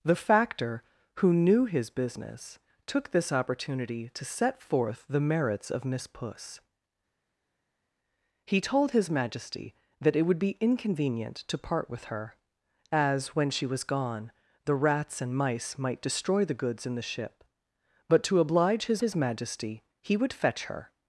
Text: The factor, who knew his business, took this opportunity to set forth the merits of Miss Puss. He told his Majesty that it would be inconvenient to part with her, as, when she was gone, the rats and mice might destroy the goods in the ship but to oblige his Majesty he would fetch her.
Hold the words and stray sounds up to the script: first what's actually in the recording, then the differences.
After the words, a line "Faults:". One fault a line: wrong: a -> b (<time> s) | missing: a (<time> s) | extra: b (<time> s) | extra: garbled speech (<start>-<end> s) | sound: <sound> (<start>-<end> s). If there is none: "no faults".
The factor, who knew his business, took this opportunity to set forth the merits of Miss Puss. He told his Majesty that it would be inconvenient to part with her, as, when she was gone, the rats and mice might destroy the goods in the ship but to oblige his his Majesty he would fetch her.
Faults:
extra: his (19.0 s)